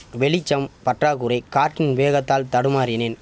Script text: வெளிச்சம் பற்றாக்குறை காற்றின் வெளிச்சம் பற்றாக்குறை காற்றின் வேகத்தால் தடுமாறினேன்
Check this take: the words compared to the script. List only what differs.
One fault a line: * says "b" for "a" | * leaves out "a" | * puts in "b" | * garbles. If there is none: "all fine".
* leaves out "வெளிச்சம் பற்றாக்குறை காற்றின்"